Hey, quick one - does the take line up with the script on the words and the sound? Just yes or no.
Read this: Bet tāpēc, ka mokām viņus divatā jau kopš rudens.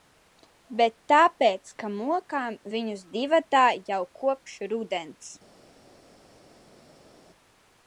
yes